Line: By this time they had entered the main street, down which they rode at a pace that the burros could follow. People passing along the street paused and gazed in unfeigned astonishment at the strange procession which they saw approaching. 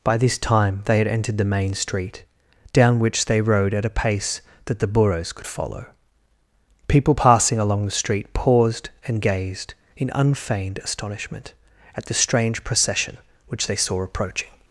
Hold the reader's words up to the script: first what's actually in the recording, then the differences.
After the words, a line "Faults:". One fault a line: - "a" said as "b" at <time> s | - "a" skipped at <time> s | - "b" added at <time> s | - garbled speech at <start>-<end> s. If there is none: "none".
By this time they had entered the main street, down which they rode at a pace that the burros could follow. People passing along the street paused and gazed in unfeigned astonishment at the strange procession which they saw approaching.
Faults:
none